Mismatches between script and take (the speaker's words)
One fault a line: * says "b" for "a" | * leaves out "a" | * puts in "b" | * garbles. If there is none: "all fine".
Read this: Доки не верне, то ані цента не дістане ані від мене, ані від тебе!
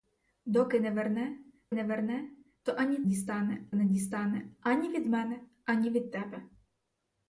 * puts in "не верне"
* says "дістане" for "цента"